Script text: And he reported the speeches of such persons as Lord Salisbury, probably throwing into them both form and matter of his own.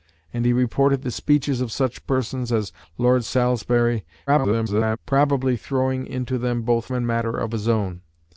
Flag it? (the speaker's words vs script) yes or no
yes